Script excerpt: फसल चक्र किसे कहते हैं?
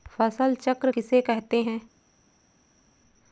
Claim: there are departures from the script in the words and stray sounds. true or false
false